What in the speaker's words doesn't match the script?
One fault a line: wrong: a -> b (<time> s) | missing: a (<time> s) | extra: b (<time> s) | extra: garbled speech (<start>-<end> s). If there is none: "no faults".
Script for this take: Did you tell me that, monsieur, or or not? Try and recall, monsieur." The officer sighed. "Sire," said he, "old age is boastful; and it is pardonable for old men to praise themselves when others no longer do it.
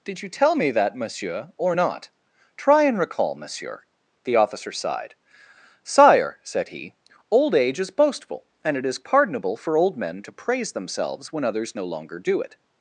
missing: or (1.8 s)